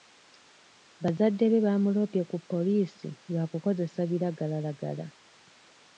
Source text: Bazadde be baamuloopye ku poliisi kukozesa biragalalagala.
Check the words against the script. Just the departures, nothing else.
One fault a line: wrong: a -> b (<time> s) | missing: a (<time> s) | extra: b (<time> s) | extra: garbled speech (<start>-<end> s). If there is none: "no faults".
extra: lwa (3.3 s)